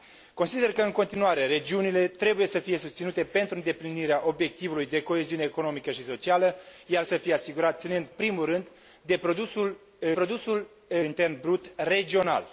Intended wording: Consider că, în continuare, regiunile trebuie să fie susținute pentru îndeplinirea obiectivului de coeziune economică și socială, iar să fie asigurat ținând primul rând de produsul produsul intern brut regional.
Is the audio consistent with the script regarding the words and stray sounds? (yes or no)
yes